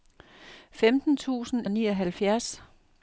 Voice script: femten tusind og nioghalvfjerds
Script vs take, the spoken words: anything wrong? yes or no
no